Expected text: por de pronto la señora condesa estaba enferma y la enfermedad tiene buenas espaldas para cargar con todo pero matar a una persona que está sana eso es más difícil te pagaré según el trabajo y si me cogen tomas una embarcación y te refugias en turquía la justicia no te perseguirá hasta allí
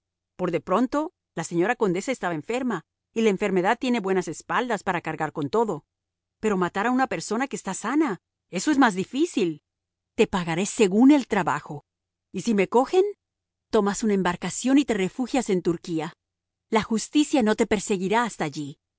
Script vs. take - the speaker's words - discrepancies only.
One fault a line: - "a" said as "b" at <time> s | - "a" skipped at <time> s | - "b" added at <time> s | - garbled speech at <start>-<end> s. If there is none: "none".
none